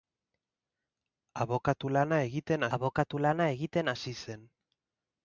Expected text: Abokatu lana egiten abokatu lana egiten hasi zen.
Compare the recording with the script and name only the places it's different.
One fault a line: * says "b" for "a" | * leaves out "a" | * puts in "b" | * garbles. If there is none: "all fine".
all fine